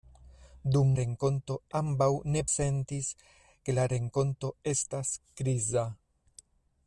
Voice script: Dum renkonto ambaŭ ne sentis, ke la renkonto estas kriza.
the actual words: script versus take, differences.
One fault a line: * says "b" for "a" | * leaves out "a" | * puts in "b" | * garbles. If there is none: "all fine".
all fine